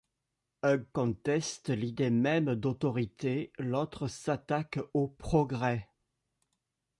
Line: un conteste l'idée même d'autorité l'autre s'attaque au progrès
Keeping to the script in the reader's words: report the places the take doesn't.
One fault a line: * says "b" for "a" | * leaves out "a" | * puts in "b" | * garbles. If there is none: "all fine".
all fine